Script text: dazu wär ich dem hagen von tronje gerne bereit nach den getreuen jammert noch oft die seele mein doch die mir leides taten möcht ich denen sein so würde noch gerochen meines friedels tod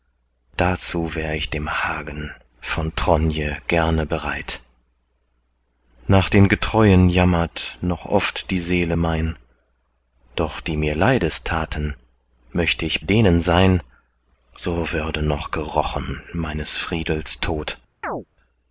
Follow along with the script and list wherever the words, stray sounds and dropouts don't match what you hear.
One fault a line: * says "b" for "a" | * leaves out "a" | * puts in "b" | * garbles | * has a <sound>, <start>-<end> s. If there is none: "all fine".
* has a chirp, 18.0-18.3 s